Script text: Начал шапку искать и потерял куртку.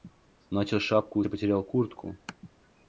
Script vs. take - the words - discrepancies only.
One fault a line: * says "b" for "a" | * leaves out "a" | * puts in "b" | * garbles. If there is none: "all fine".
* leaves out "искать"